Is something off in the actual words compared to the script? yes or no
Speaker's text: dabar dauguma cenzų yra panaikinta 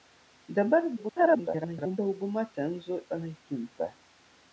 yes